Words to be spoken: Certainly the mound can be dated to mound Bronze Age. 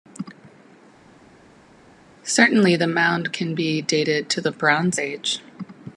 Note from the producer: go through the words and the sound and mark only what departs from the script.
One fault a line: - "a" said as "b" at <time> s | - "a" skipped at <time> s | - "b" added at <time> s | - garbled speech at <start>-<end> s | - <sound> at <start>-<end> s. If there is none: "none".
- "mound" said as "the" at 4.4 s